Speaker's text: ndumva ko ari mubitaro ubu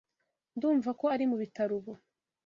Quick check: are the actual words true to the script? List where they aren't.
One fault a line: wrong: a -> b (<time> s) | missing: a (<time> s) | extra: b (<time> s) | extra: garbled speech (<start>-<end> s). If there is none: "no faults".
no faults